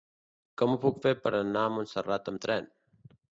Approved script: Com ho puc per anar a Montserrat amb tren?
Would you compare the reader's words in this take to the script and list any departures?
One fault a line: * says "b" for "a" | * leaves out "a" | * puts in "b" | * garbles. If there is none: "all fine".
* puts in "fer"